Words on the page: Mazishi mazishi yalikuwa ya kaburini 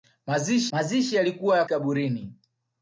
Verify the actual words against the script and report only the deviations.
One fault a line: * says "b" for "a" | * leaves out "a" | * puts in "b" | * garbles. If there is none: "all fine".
all fine